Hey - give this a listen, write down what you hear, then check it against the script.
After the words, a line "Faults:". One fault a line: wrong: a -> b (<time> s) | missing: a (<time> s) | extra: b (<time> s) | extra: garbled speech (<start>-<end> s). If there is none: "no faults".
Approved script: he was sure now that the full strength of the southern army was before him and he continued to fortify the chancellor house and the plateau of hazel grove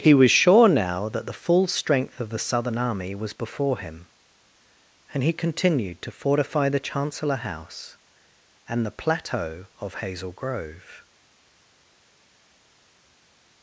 he was sure now that the full strength of the southern army was before him and he continued to fortify the chancellor house and the plateau of hazel grove
Faults:
no faults